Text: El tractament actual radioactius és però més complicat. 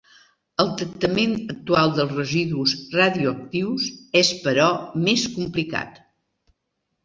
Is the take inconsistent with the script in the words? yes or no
yes